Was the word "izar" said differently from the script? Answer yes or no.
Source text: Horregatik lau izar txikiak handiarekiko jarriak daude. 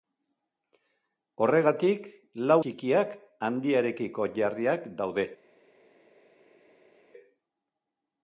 yes